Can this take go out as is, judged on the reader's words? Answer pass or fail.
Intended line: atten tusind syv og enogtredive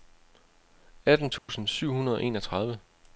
fail